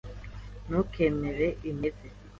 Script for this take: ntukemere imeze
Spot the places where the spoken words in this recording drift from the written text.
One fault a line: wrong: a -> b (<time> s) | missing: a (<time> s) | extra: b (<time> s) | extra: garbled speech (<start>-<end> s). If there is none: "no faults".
no faults